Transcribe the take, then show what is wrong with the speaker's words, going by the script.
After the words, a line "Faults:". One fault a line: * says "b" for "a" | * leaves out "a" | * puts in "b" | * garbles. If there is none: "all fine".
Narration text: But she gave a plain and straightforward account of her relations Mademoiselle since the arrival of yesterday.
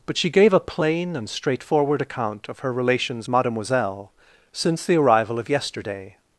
But she gave a plain and straightforward account of her relations Mademoiselle since the arrival of yesterday.
Faults:
all fine